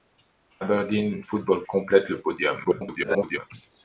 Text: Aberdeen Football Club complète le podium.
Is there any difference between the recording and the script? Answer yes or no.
yes